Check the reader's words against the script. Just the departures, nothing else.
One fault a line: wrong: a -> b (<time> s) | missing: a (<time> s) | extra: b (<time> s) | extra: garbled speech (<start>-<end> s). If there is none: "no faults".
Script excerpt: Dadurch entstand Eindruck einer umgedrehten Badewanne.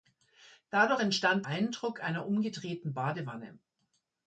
no faults